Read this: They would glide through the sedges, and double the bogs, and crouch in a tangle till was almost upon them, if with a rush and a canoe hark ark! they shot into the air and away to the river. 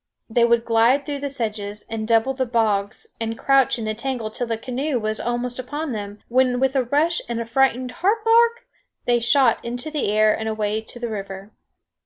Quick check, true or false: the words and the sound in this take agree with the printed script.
false